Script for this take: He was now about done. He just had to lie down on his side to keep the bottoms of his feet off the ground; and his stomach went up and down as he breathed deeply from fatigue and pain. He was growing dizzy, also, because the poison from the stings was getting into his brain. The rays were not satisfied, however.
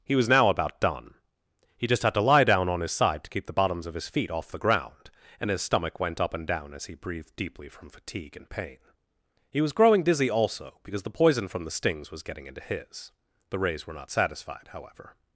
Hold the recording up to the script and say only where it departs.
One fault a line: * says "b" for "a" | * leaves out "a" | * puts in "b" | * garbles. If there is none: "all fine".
* leaves out "brain"